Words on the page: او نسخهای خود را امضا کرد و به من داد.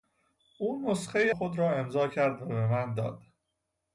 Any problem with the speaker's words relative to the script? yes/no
no